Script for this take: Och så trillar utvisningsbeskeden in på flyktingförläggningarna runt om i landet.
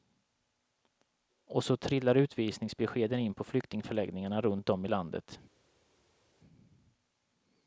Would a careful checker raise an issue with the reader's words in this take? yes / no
no